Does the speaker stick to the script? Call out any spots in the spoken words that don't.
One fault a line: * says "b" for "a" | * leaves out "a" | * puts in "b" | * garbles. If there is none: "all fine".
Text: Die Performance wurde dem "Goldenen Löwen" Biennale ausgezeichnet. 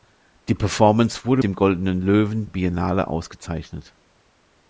all fine